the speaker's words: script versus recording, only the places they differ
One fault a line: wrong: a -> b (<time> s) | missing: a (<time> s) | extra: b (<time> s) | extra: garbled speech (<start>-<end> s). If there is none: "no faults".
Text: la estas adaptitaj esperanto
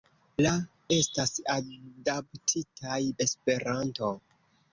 no faults